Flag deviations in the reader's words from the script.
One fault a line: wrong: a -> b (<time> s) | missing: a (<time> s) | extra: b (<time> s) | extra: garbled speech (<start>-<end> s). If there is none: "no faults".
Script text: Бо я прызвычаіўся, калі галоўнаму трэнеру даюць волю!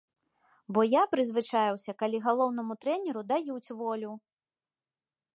no faults